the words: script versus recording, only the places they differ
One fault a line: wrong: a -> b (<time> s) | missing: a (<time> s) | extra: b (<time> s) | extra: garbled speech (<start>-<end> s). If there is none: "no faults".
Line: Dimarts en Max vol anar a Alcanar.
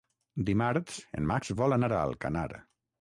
no faults